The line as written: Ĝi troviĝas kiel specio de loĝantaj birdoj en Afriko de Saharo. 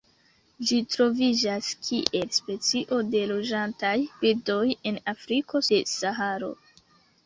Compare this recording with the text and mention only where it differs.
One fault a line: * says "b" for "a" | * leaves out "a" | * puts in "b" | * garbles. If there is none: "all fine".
all fine